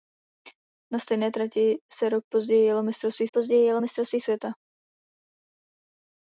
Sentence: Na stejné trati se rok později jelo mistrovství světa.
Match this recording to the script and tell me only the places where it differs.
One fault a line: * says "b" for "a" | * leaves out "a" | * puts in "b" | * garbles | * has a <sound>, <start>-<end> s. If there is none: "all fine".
* puts in "později jelo mistrovství"